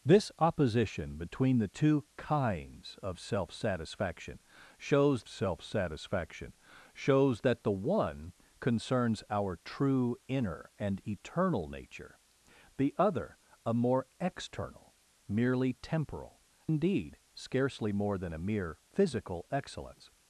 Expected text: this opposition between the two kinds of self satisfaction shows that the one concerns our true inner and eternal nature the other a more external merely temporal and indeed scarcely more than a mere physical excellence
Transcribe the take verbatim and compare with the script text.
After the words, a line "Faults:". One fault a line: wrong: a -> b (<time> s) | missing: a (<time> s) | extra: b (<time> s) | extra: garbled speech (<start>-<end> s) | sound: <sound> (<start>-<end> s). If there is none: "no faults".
this opposition between the two kinds of self satisfaction shows self satisfaction shows that the one concerns our true inner and eternal nature the other a more external merely temporal indeed scarcely more than a mere physical excellence
Faults:
extra: self satisfaction shows (5.3 s)
missing: and (16.4 s)